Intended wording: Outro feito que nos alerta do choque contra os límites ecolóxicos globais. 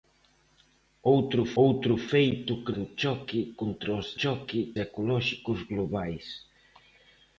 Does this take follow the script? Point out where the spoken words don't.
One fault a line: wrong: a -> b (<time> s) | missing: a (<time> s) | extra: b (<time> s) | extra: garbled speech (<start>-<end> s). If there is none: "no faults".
extra: outro (1.6 s)
missing: nos alerta (2.7 s)
wrong: límites -> choque (4.2 s)